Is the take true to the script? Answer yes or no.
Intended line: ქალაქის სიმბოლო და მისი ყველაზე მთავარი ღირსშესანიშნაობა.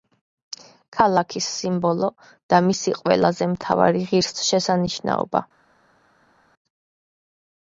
yes